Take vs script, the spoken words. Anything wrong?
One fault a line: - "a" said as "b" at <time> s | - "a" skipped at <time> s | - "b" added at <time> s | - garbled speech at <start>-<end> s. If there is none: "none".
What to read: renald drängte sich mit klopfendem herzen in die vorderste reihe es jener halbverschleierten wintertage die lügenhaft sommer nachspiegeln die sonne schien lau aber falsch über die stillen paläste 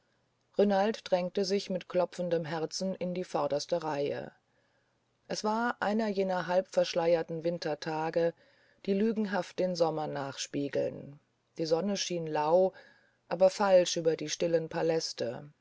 - "war einer" added at 5.4 s
- "den" added at 9.6 s